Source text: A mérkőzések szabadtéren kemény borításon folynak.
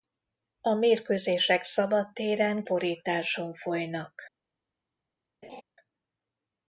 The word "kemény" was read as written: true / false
false